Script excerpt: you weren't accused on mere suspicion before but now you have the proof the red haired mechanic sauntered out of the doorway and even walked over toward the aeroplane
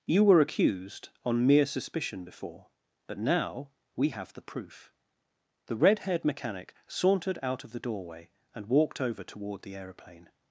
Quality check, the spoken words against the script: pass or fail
fail